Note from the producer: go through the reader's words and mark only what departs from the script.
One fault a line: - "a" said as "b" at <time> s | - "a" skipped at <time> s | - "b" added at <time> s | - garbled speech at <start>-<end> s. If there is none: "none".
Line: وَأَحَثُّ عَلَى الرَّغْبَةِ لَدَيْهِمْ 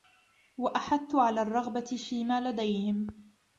- "فِيمَا" added at 2.1 s